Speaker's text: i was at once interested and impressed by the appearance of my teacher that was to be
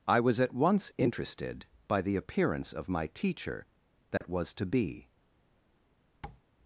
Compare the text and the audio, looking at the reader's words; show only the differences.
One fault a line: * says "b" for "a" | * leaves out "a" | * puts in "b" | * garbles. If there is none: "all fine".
* leaves out "and impressed"